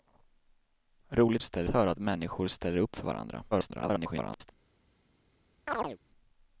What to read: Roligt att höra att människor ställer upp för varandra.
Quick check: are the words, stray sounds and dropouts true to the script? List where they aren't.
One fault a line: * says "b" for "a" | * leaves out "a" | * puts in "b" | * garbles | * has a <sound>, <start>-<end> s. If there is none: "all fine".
* says "ställer" for "att"
* garbles
* has a chirp, 5.7-6.0 s